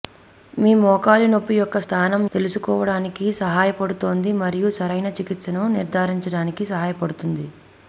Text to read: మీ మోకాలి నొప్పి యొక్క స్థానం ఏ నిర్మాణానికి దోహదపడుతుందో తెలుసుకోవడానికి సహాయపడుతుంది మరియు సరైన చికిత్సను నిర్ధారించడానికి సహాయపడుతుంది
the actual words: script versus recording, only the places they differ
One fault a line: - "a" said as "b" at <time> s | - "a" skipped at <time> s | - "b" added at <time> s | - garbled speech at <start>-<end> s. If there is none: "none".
- "ఏ నిర్మాణానికి దోహదపడుతుందో" skipped at 2.2 s